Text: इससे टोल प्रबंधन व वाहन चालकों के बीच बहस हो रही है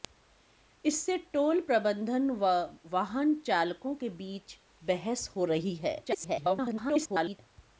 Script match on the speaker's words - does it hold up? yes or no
no